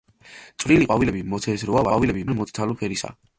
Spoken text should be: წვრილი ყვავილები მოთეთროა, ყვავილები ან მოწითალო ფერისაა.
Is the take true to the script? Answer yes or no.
yes